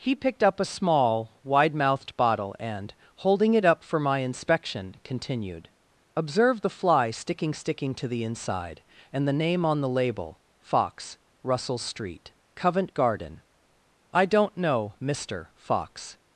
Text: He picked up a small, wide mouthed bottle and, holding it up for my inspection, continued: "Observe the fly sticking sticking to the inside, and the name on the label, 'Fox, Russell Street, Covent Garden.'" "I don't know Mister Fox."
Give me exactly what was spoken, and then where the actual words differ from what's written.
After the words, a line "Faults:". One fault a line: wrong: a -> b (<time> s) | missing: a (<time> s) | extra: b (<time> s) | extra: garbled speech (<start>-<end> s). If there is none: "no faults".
He picked up a small, wide mouthed bottle and, holding it up for my inspection, continued: "Observe the fly sticking sticking to the inside, and the name on the label, 'Fox, Russell Street, Covent Garden.'" "I don't know Mister Fox."
Faults:
no faults